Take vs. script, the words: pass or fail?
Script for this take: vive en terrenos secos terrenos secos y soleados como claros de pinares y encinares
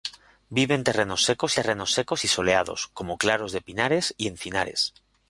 pass